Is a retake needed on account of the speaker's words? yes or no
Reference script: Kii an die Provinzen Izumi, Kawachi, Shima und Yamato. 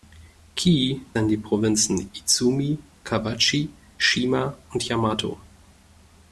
no